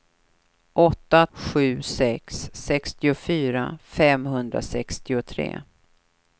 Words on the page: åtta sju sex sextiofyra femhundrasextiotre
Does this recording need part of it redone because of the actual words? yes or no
no